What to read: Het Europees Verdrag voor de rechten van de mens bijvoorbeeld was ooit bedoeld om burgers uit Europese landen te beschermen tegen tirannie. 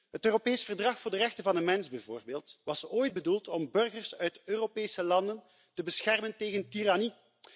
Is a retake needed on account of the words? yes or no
no